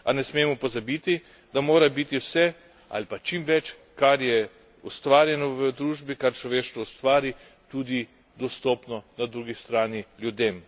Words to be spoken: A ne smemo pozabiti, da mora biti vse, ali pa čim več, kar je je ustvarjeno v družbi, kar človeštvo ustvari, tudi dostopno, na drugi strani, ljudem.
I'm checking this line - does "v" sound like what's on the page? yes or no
yes